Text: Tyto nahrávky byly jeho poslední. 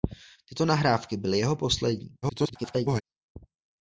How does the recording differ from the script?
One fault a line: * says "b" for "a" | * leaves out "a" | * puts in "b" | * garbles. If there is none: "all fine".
* garbles